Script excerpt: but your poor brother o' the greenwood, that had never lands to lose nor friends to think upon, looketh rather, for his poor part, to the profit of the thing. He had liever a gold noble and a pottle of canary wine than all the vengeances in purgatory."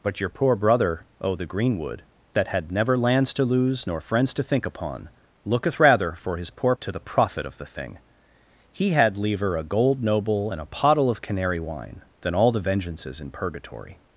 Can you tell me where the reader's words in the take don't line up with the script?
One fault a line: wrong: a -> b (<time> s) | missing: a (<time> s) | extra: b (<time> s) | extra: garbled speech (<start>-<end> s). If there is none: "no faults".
missing: part (6.8 s)